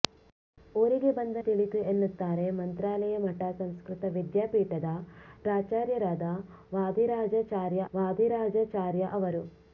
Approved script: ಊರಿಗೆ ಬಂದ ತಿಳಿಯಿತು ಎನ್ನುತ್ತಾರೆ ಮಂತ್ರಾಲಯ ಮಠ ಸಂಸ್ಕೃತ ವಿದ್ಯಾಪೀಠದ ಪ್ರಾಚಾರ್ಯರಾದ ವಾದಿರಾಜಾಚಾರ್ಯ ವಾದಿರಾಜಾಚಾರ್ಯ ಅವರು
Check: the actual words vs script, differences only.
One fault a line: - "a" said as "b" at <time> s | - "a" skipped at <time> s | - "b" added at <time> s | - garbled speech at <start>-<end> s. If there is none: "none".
none